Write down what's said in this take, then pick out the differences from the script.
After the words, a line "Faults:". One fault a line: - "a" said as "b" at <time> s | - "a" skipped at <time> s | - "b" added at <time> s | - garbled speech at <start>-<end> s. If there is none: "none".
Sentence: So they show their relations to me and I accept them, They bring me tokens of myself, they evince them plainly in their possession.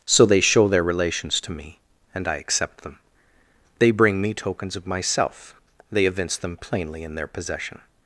So they show their relations to me and I accept them, They bring me tokens of myself, they evince them plainly in their possession.
Faults:
none